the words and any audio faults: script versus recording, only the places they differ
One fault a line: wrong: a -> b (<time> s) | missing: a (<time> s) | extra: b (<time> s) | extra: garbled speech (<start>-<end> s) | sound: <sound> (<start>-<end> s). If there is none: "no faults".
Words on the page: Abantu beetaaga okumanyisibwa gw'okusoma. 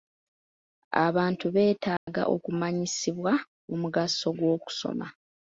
sound: dropout (2.0-2.1 s)
extra: omugaso (3.7 s)